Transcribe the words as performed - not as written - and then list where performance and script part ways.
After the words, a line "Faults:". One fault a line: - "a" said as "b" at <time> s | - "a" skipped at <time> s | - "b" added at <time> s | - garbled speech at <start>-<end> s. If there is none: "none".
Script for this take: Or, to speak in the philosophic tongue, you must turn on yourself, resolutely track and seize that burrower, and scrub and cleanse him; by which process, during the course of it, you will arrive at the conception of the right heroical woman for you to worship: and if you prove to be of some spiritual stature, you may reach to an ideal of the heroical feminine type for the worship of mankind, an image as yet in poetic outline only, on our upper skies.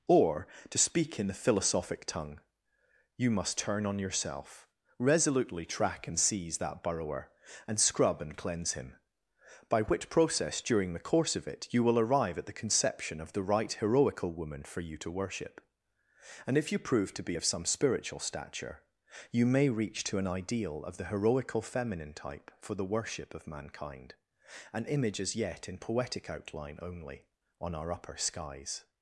Or, to speak in the philosophic tongue, you must turn on yourself, resolutely track and seize that burrower, and scrub and cleanse him; by which process, during the course of it, you will arrive at the conception of the right heroical woman for you to worship: and if you prove to be of some spiritual stature, you may reach to an ideal of the heroical feminine type for the worship of mankind, an image as yet in poetic outline only, on our upper skies.
Faults:
none